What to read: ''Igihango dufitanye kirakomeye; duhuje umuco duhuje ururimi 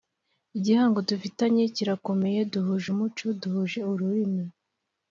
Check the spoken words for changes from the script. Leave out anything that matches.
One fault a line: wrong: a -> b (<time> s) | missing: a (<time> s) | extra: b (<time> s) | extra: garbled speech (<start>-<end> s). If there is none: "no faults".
no faults